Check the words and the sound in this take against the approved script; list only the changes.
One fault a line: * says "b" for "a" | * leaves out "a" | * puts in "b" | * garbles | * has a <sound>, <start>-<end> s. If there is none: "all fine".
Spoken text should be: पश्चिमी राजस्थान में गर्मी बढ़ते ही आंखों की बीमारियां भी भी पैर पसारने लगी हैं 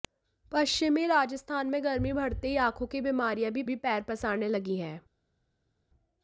all fine